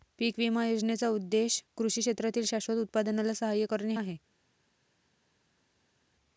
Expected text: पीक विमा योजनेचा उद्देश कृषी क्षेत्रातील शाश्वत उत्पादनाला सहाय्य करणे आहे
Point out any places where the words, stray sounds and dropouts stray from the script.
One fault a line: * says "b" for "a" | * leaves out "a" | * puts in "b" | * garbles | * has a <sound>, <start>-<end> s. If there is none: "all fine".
all fine